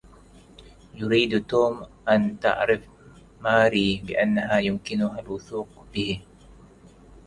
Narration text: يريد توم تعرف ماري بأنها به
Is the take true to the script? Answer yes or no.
no